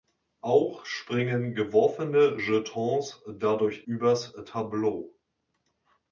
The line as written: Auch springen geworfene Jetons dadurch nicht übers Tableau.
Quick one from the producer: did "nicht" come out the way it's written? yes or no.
no